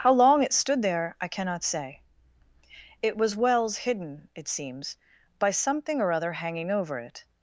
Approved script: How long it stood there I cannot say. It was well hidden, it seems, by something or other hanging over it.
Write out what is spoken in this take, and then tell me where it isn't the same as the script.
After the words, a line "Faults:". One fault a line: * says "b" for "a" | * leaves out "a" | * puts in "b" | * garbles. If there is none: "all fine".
How long it stood there I cannot say. It was wells hidden, it seems, by something or other hanging over it.
Faults:
* says "wells" for "well"